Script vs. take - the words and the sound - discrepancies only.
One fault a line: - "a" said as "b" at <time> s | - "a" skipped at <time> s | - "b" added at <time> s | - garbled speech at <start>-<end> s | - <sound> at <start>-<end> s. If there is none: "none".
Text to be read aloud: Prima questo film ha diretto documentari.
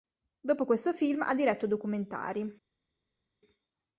- "Prima" said as "Dopo" at 0.4 s